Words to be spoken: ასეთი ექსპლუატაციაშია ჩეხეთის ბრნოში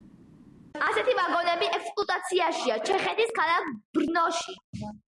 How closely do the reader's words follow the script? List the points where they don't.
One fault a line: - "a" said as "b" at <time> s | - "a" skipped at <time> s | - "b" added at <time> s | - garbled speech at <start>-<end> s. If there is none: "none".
- "ვაგონები" added at 1.2 s
- "ქალაქ" added at 3.4 s